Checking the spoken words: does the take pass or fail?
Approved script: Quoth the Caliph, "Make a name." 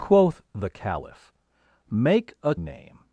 pass